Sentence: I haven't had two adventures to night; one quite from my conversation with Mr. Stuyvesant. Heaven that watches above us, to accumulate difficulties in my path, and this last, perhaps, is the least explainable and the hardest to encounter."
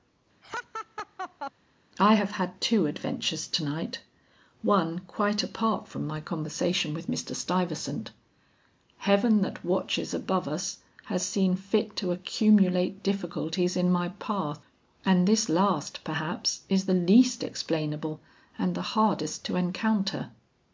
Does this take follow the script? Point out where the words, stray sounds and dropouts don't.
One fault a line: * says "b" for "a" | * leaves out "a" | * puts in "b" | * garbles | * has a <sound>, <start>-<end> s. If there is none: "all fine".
* has a laugh, 0.4-1.5 s
* says "have" for "haven't"
* puts in "apart"
* puts in "has seen fit"